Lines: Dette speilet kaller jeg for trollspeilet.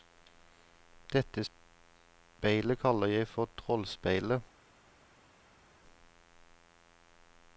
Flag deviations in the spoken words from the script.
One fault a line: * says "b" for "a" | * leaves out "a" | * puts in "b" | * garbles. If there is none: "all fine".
all fine